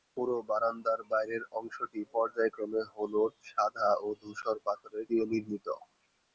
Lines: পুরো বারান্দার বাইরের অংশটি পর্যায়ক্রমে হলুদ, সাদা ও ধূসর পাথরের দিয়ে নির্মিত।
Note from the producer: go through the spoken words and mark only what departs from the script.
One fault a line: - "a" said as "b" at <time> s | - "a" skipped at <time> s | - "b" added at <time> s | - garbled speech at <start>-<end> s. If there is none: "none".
none